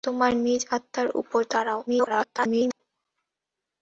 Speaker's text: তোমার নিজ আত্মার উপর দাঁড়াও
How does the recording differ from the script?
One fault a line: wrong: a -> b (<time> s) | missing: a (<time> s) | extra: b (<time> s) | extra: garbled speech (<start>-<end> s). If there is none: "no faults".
extra: garbled speech (1.9-2.8 s)